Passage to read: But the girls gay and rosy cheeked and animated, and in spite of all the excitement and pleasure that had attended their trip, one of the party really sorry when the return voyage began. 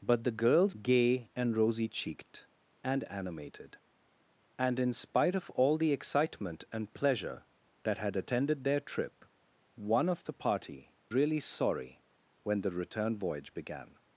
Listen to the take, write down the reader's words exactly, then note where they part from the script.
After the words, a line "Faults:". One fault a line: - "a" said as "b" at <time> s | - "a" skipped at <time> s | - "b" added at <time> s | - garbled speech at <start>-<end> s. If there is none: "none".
But the girls gay and rosy cheeked and animated, and in spite of all the excitement and pleasure that had attended their trip, one of the party really sorry when the return voyage began.
Faults:
none